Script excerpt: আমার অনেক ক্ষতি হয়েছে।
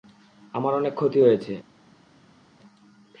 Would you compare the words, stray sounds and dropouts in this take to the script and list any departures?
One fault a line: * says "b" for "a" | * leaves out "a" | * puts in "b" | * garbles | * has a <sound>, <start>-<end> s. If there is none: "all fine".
all fine